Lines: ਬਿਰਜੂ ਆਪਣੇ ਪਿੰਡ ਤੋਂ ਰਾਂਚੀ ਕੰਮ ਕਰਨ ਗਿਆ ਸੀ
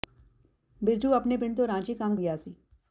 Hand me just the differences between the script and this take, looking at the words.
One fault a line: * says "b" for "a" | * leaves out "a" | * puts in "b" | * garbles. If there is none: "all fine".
* leaves out "ਕਰਨ"